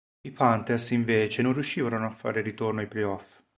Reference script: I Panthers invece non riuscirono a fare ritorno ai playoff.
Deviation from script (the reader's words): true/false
false